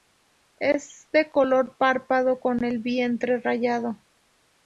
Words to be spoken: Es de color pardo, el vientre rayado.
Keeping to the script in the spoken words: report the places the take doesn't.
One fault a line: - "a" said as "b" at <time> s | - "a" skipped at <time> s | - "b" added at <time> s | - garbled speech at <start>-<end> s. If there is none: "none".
- "con" added at 2.4 s